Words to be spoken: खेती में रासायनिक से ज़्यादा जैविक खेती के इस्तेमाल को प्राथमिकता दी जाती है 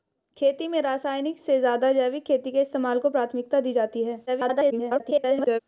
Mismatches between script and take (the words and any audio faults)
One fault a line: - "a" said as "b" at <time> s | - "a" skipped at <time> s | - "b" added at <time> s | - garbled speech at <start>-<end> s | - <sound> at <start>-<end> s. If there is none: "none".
- garbled speech at 4.3-5.6 s